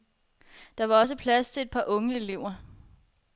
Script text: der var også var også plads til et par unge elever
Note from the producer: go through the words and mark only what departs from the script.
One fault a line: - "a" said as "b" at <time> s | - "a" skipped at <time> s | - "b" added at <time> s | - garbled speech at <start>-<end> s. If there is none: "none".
- "var også" skipped at 1.2 s